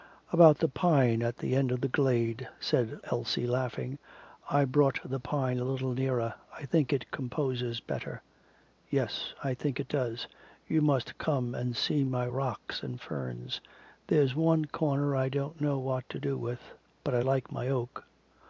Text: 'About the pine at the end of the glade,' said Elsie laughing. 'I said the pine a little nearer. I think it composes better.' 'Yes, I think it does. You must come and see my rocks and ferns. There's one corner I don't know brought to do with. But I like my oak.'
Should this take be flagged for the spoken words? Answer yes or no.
yes